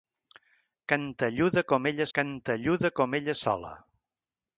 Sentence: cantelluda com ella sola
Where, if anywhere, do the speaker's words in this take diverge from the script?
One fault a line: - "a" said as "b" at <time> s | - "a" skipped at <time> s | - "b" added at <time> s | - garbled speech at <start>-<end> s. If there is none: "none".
- "cantelluda com ella" added at 2.2 s